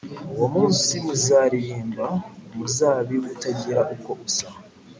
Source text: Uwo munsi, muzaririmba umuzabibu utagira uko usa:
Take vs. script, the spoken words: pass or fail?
pass